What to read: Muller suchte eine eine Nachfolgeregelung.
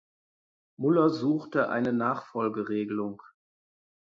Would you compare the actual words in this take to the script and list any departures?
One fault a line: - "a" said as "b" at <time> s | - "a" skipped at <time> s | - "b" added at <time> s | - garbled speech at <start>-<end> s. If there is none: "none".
- "eine" skipped at 1.9 s